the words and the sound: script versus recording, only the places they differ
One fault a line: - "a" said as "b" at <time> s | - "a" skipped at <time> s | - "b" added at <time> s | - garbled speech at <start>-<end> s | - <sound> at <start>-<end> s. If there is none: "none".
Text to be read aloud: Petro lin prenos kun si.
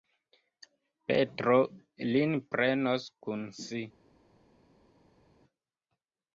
none